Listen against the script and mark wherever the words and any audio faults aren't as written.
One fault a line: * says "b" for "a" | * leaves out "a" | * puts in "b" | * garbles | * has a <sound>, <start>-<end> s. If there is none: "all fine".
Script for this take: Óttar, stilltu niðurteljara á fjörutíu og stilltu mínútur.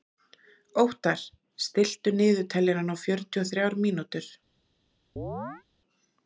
* says "þrjár" for "stilltu"
* has a chirp, 5.2-5.6 s